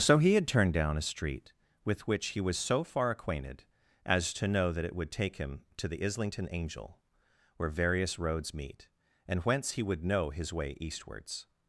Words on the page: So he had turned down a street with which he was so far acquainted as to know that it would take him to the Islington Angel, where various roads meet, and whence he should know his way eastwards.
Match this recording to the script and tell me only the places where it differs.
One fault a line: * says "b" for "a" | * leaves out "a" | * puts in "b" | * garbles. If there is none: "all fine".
* says "would" for "should"